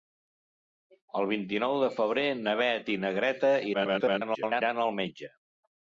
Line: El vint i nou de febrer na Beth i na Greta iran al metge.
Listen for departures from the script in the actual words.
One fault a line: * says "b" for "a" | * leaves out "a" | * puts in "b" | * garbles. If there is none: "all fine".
* garbles